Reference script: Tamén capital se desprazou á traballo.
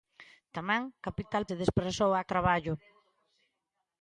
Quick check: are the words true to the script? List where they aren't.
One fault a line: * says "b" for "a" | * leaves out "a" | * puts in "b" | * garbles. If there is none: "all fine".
all fine